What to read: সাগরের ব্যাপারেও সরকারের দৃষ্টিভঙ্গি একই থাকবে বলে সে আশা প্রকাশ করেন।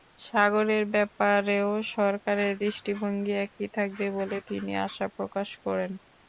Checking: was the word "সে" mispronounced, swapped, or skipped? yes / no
yes